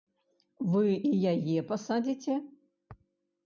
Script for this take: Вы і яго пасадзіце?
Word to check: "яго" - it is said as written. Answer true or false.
false